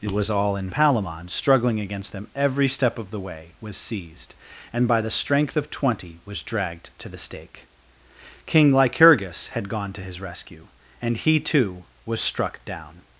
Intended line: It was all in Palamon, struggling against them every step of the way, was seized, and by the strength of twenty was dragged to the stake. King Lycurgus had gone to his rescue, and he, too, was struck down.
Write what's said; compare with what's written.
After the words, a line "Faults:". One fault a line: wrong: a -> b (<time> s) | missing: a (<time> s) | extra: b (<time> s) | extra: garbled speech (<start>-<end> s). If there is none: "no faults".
It was all in Palamon, struggling against them every step of the way, was seized, and by the strength of twenty was dragged to the stake. King Lycurgus had gone to his rescue, and he, too, was struck down.
Faults:
no faults